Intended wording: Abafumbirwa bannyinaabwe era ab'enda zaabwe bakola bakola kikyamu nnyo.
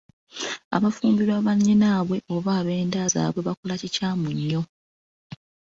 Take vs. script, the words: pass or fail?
fail